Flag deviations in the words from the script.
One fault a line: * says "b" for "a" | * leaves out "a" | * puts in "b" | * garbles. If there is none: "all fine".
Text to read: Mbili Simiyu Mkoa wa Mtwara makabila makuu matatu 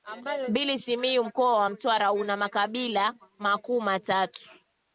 * puts in "una"